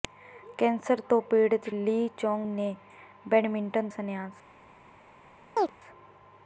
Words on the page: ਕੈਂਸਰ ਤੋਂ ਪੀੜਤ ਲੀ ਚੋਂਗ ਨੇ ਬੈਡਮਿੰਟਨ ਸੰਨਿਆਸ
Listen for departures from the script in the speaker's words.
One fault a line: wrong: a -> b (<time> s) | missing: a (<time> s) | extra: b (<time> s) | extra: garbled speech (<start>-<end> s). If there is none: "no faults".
no faults